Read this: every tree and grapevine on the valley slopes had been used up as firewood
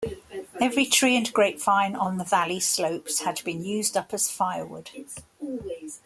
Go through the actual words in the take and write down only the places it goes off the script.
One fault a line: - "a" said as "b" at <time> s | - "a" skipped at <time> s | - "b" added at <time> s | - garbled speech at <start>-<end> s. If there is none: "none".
none